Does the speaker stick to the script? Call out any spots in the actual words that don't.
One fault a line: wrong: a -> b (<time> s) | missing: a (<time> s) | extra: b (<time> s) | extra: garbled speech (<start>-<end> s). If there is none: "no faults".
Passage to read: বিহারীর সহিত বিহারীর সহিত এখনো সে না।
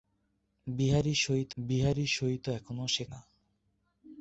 no faults